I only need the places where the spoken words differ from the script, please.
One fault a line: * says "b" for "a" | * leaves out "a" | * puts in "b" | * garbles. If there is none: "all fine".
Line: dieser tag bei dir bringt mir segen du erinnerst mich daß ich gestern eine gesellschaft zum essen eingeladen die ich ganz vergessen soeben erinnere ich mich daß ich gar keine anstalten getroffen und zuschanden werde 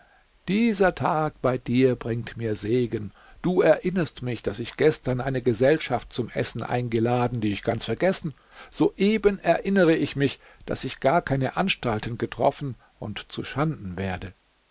all fine